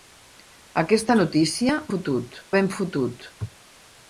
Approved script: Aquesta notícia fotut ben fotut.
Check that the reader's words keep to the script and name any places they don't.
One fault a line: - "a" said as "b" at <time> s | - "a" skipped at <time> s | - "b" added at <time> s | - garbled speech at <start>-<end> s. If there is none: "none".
none